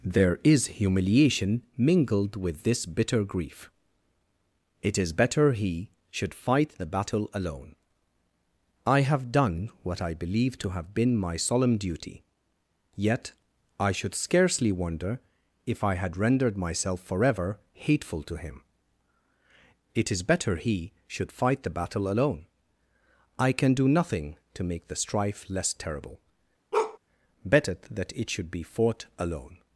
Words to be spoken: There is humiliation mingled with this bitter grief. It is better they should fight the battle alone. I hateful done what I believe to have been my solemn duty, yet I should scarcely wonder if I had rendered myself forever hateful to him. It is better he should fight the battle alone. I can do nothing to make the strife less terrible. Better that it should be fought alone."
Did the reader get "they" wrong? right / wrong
wrong